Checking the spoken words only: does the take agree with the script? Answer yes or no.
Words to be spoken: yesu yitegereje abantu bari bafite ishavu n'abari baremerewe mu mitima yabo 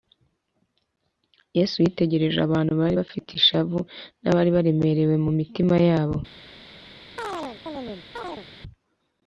yes